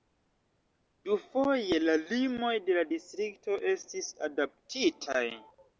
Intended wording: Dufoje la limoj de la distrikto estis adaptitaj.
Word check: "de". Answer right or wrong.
right